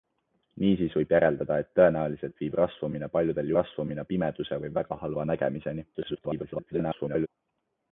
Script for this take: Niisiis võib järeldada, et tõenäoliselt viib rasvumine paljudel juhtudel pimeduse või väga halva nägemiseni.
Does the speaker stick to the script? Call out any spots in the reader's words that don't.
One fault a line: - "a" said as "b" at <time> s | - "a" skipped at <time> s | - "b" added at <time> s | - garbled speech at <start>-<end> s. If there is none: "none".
- "juhtudel" said as "rasvumine" at 3.6 s
- garbled speech at 5.9-7.3 s